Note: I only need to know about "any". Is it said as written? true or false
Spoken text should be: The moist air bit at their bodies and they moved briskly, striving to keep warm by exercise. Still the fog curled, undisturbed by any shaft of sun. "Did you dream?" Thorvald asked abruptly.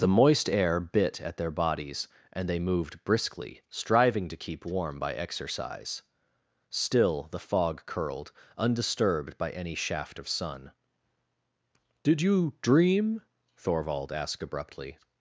true